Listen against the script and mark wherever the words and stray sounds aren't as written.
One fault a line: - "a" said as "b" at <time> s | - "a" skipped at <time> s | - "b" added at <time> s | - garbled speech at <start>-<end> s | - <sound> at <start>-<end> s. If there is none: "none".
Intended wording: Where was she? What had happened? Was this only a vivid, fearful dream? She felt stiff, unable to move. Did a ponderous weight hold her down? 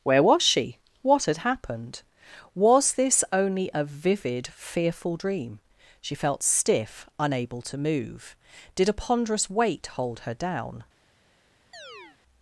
- chirp at 11.7-12.2 s